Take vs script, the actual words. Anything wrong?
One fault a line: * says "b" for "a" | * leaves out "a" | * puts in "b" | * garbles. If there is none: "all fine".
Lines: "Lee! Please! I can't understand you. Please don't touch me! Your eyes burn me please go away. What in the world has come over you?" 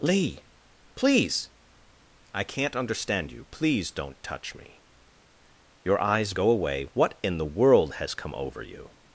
* leaves out "burn me please"